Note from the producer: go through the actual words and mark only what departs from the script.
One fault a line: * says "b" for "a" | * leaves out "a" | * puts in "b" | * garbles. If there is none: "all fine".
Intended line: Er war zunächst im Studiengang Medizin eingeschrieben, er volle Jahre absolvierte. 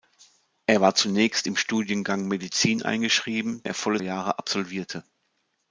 all fine